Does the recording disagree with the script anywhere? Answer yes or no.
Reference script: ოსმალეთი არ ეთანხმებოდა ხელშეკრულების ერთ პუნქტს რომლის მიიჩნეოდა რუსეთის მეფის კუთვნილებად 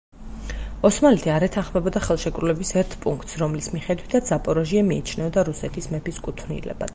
yes